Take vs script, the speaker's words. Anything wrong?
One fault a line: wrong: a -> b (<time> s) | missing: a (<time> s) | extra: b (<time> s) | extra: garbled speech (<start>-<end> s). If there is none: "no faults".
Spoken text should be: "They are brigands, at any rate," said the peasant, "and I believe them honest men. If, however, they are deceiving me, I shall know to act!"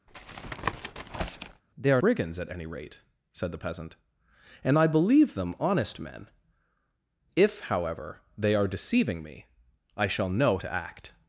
no faults